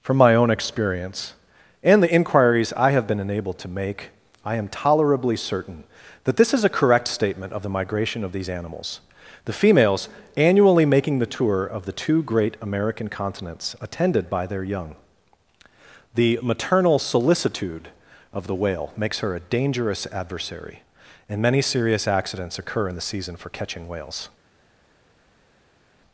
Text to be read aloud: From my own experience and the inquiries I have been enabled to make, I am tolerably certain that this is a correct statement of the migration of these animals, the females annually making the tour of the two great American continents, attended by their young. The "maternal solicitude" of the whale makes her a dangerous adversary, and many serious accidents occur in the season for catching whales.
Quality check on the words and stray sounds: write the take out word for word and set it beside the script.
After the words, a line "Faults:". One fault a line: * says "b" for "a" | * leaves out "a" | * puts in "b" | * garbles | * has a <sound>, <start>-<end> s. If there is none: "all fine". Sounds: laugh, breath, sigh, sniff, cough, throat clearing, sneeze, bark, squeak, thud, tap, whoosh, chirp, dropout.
From my own experience and the inquiries I have been enabled to make, I am tolerably certain that this is a correct statement of the migration of these animals, the females annually making the tour of the two great American continents, attended by their young. The "maternal solicitude" of the whale makes her a dangerous adversary, and many serious accidents occur in the season for catching whales.
Faults:
all fine